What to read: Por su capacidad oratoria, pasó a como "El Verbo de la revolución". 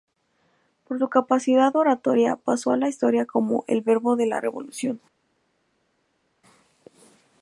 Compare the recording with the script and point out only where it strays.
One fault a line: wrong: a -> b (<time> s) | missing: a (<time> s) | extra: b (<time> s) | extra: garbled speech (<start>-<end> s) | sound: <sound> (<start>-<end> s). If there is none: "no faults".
extra: la historia (2.8 s)